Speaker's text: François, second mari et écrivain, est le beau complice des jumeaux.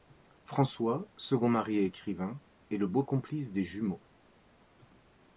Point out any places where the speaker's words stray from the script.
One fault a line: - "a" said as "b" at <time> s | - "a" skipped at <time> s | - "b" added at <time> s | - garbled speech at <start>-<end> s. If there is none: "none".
none